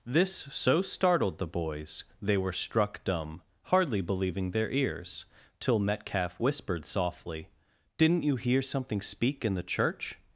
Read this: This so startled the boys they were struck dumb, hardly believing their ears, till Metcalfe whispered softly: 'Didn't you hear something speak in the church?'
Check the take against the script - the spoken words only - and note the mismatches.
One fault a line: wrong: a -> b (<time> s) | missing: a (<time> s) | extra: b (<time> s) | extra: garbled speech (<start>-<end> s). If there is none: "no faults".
no faults